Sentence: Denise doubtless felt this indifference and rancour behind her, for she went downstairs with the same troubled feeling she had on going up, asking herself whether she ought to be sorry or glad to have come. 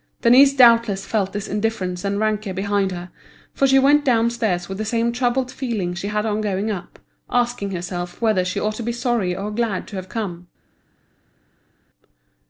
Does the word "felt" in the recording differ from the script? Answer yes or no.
no